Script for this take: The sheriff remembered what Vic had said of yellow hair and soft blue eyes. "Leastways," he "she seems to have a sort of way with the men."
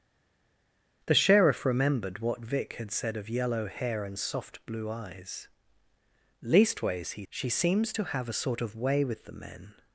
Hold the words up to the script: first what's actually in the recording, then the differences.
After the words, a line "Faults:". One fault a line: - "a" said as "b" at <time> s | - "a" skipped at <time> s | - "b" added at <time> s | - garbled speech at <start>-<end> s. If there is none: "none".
The sheriff remembered what Vic had said of yellow hair and soft blue eyes. "Leastways," he "she seems to have a sort of way with the men."
Faults:
none